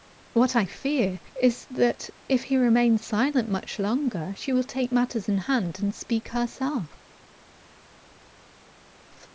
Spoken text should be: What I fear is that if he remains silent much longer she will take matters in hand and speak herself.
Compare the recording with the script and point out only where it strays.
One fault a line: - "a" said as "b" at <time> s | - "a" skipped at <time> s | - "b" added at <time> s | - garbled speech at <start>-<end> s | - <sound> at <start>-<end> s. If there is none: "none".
none